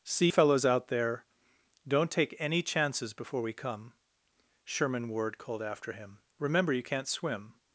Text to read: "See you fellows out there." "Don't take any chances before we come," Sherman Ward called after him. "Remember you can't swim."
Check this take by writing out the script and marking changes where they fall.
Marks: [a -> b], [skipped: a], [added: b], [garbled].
"See [skipped: you] fellows out there." "Don't take any chances before we come," Sherman Ward called after him. "Remember you can't swim."